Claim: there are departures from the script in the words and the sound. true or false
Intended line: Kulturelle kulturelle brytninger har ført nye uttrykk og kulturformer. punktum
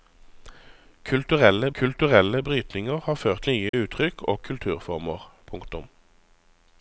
true